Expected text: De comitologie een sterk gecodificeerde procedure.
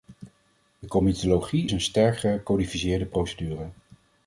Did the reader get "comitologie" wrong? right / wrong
right